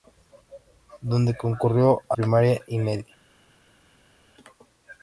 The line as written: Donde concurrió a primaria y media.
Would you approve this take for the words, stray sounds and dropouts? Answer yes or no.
yes